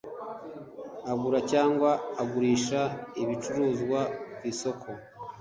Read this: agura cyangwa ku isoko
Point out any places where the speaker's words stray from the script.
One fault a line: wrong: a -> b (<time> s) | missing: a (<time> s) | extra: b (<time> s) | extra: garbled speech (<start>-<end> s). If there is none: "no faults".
extra: agurisha ibicuruzwa (2.2 s)